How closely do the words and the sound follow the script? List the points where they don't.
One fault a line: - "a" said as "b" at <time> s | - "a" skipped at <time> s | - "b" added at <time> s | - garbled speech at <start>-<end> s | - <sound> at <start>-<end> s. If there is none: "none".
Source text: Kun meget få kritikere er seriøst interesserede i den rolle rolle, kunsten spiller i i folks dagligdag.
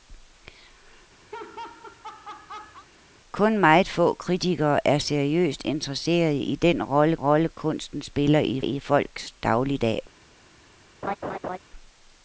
- laugh at 1.3-2.9 s
- laugh at 11.0-11.6 s